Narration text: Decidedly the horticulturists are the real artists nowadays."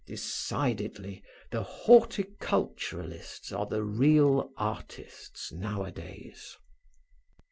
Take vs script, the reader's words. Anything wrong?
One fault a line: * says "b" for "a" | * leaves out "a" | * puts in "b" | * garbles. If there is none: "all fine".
all fine